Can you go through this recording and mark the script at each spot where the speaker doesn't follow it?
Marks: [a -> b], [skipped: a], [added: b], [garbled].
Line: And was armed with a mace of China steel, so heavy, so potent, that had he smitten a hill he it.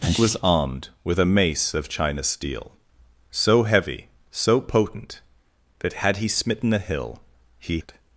And was armed with a mace of China steel, so heavy, so potent, that had he smitten a hill he it.